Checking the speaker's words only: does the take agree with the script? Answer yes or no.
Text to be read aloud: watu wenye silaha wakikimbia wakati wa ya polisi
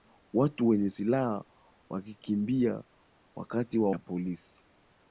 yes